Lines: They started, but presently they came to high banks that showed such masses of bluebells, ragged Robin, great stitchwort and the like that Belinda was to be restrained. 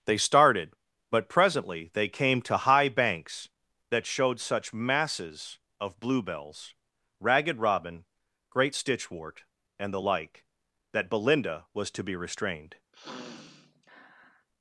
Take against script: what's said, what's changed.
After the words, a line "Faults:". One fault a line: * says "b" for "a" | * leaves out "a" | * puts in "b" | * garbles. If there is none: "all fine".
They started, but presently they came to high banks that showed such masses of bluebells, ragged Robin, great stitchwort and the like that Belinda was to be restrained.
Faults:
all fine